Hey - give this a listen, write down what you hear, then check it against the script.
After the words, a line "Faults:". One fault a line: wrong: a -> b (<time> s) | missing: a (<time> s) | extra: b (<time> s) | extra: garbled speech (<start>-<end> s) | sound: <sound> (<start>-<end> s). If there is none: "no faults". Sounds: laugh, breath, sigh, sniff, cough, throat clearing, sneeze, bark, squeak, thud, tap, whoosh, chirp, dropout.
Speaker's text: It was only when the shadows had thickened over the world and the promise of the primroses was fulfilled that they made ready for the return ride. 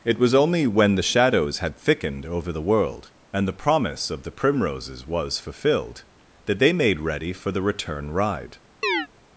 It was only when the shadows had thickened over the world and the promise of the primroses was fulfilled that they made ready for the return ride.
Faults:
sound: chirp (8.8-9.1 s)